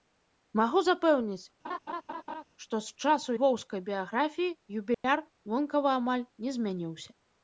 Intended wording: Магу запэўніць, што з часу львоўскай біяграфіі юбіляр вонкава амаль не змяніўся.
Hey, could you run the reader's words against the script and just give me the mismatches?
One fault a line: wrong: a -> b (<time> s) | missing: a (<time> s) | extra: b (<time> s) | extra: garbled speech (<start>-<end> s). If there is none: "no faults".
no faults